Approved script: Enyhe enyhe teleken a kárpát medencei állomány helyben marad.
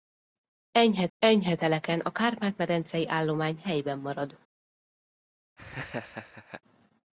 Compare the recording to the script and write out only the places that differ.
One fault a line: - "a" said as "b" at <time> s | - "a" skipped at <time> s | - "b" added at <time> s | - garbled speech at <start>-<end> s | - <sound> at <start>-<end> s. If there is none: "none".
- laugh at 5.6-6.6 s